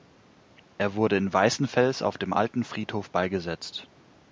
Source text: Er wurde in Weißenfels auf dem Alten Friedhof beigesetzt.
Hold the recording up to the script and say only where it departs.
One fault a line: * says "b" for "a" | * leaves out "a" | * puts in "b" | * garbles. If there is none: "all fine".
all fine